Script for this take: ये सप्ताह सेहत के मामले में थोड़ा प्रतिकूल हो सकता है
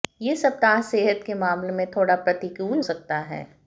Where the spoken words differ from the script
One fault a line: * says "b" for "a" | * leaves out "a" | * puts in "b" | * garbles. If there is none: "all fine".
* leaves out "हो"